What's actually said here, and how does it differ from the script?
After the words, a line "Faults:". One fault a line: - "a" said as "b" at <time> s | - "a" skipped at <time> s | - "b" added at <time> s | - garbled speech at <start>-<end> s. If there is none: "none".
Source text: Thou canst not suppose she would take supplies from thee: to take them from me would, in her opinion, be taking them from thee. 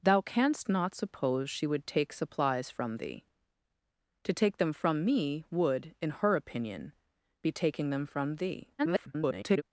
Thou canst not suppose she would take supplies from thee: to take them from me would, in her opinion, be taking them from thee. [garbled]
Faults:
- garbled speech at 8.8-9.6 s